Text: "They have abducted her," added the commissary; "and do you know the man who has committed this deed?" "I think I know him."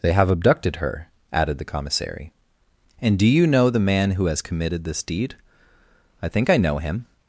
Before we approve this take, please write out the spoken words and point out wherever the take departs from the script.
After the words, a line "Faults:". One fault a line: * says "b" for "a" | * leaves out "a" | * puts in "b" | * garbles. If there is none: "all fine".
"They have abducted her," added the commissary; "and do you know the man who has committed this deed?" "I think I know him."
Faults:
all fine